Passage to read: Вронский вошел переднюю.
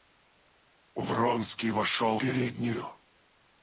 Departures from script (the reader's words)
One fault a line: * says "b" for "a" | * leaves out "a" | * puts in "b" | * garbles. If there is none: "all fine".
all fine